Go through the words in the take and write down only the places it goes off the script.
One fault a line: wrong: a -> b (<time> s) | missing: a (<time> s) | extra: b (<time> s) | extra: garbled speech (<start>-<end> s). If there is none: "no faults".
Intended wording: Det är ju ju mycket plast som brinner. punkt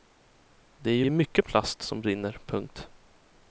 no faults